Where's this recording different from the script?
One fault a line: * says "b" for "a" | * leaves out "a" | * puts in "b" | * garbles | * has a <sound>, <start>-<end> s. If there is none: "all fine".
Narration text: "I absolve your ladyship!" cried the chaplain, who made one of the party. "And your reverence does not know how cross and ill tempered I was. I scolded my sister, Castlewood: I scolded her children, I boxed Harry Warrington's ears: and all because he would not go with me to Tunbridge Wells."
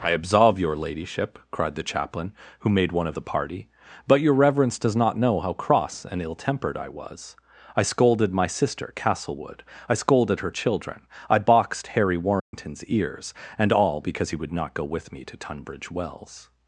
* says "But" for "And"
* has a dropout, 12.4-12.5 s